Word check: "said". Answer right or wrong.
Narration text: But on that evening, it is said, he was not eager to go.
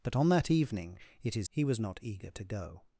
wrong